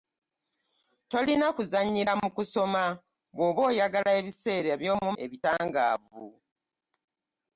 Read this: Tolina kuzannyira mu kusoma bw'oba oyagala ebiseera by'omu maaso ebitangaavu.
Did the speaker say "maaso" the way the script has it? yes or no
no